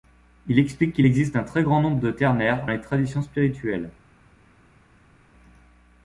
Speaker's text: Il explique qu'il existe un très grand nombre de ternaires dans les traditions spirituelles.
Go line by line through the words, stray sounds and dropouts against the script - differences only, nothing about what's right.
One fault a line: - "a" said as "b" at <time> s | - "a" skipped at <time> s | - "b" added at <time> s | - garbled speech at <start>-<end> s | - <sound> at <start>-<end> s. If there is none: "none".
- "dans" skipped at 2.7 s